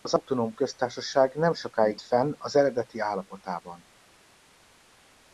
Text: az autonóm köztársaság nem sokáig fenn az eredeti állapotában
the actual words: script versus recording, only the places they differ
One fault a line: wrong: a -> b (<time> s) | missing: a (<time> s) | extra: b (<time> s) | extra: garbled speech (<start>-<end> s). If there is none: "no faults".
no faults